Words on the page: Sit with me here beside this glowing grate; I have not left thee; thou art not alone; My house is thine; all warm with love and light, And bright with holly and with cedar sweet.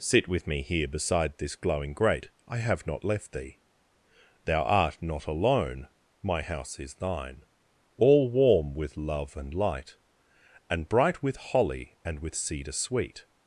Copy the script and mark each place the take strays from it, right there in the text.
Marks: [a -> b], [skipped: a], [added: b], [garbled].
Sit with me here beside this glowing grate; I have not left thee; thou art not alone; My house is thine; all warm with love and light, And bright with holly and with cedar sweet.